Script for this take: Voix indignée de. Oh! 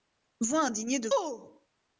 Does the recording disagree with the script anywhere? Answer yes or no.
no